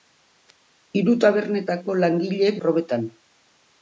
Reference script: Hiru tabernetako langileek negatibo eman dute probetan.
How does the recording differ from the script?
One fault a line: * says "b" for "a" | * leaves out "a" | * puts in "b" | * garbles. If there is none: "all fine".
* leaves out "negatibo eman dute"